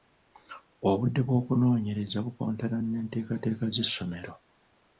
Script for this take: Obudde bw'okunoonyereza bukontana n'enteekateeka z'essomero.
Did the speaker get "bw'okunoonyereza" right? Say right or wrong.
right